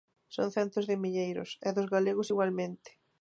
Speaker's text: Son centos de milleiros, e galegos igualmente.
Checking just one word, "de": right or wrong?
right